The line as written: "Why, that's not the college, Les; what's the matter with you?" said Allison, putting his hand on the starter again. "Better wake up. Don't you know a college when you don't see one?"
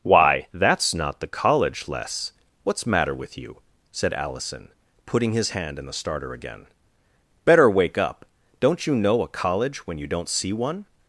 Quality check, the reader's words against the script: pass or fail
fail